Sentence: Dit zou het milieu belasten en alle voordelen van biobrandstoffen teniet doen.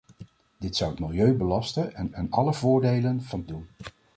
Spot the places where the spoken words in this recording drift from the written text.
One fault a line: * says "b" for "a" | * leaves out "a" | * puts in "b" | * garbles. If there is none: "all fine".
* puts in "en"
* leaves out "biobrandstoffen teniet"